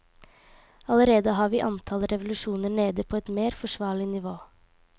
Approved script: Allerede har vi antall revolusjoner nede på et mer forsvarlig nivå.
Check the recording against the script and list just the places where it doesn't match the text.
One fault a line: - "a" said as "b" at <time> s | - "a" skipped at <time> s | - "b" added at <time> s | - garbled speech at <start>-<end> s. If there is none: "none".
none